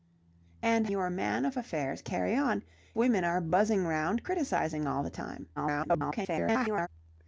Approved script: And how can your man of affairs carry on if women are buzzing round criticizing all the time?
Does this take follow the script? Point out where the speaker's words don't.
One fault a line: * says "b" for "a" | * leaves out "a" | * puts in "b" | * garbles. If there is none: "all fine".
* leaves out "how can"
* leaves out "if"
* garbles